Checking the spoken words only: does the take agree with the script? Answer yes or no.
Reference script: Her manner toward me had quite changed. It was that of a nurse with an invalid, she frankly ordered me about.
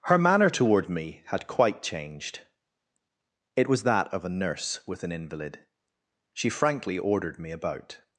yes